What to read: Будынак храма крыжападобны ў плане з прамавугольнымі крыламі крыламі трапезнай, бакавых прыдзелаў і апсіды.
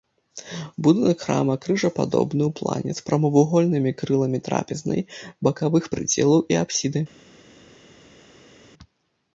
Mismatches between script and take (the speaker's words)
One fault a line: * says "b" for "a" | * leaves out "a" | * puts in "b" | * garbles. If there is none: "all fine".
* leaves out "крыламі"